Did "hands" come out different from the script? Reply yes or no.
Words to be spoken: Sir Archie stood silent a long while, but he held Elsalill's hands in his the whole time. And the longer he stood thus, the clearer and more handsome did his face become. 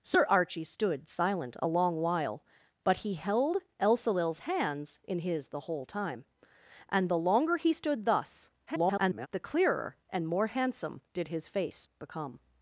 no